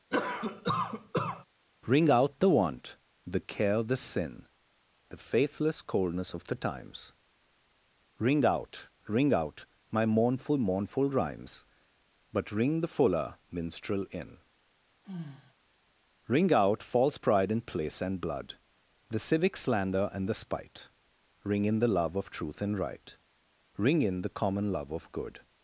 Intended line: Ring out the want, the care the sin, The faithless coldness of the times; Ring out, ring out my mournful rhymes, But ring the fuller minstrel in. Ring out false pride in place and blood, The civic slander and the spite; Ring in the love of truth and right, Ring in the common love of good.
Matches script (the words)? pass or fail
fail